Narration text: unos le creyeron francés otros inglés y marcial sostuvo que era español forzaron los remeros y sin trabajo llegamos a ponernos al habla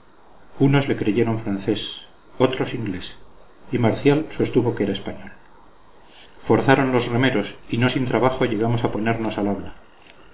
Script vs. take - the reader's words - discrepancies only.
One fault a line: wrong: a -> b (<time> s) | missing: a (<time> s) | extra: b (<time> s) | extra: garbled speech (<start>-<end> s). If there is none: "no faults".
extra: no (7.8 s)